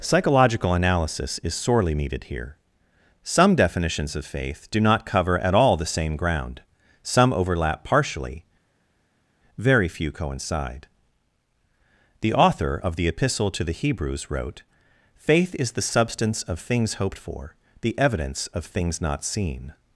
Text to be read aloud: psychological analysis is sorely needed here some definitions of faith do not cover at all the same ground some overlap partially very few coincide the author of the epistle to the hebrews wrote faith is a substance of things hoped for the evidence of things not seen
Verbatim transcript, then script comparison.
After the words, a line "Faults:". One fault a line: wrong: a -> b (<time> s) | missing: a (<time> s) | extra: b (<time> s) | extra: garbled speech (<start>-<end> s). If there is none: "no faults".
psychological analysis is sorely needed here some definitions of faith do not cover at all the same ground some overlap partially very few coincide the author of the epistle to the hebrews wrote faith is the substance of things hoped for the evidence of things not seen
Faults:
wrong: a -> the (15.7 s)